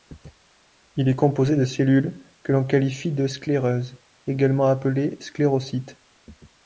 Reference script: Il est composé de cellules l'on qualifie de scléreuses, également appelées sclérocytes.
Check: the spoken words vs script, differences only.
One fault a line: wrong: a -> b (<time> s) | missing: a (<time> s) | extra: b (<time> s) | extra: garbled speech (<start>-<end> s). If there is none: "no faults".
extra: que (2.4 s)